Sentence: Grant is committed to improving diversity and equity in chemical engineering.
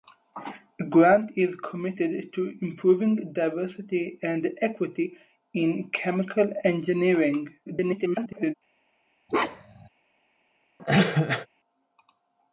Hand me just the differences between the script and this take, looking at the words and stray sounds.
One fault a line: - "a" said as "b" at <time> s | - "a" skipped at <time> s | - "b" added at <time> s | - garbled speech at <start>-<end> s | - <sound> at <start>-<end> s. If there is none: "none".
- garbled speech at 7.7-8.5 s
- bark at 9.3-9.9 s
- cough at 10.8-11.5 s